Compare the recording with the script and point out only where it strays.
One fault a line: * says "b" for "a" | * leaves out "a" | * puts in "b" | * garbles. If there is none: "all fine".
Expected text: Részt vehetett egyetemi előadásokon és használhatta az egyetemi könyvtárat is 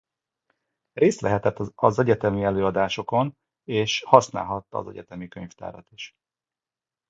* puts in "az"